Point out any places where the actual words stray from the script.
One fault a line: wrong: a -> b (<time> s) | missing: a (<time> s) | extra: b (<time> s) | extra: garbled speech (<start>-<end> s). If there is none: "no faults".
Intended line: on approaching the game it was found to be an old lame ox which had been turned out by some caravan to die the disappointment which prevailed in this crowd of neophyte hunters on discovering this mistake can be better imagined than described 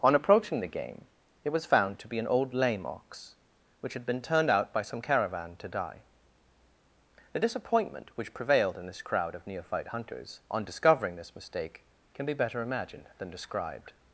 no faults